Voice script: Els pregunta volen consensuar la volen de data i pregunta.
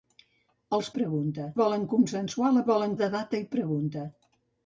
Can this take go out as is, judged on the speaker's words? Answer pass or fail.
pass